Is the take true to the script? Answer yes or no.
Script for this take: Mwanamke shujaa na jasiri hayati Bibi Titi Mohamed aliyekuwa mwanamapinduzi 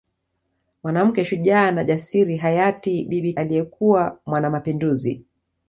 no